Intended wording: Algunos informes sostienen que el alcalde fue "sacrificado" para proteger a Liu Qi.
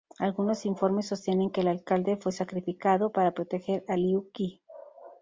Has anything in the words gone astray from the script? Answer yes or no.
no